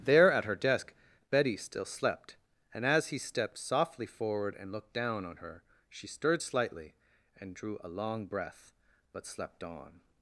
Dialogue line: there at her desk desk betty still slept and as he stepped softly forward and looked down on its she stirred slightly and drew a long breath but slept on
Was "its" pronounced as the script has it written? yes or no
no